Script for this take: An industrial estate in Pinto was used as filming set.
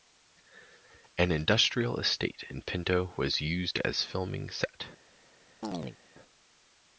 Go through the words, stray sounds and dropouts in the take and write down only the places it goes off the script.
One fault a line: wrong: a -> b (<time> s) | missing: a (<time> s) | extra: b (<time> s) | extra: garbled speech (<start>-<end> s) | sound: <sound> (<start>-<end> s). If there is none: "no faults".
sound: chirp (5.6-6.0 s)